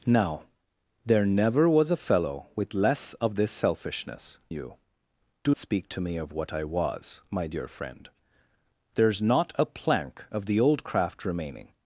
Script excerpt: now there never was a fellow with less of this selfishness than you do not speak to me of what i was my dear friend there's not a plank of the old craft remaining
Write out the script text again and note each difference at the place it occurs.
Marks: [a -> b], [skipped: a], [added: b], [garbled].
now there never was a fellow with less of this selfishness [skipped: than] you do [skipped: not] speak to me of what i was my dear friend there's not a plank of the old craft remaining